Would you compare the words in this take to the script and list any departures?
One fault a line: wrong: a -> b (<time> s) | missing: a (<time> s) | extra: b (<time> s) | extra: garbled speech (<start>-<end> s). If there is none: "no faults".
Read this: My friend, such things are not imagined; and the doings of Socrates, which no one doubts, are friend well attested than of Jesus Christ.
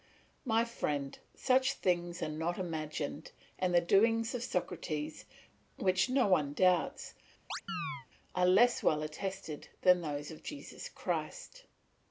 wrong: friend -> less (8.4 s)
extra: those (10.0 s)